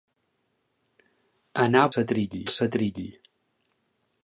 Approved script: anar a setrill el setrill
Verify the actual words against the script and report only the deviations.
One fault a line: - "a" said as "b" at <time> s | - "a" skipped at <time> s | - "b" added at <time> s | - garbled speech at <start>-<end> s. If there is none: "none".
none